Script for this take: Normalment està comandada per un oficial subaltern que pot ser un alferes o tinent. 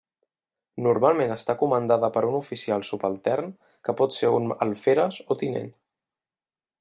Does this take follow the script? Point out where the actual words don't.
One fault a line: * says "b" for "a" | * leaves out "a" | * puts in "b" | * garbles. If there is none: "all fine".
all fine